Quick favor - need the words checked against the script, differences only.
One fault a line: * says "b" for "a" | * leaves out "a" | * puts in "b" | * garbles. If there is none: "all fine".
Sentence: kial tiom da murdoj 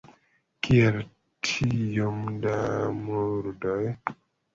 all fine